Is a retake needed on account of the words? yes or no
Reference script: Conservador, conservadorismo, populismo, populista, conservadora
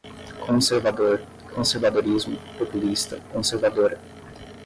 yes